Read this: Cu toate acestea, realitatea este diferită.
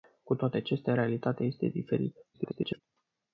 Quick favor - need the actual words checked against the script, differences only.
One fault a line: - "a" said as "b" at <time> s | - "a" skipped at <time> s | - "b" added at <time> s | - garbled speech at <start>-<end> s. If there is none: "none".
- garbled speech at 2.3-2.8 s